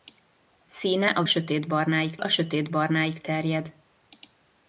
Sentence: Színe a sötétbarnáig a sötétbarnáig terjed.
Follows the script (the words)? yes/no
yes